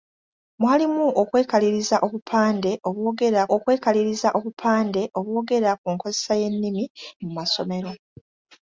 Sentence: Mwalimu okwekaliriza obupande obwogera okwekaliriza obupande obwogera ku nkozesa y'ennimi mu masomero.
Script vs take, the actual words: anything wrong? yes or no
no